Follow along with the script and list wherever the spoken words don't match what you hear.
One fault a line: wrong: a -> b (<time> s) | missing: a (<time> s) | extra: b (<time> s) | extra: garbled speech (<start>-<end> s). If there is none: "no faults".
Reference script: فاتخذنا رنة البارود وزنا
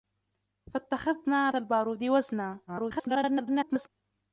missing: رنة (1.5 s)
extra: garbled speech (2.7-3.9 s)